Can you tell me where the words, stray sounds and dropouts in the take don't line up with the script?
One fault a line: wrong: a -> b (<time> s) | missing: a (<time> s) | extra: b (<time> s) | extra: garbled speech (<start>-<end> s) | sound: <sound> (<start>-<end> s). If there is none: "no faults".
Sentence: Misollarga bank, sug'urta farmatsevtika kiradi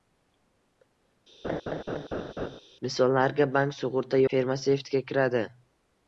sound: laugh (1.4-2.6 s)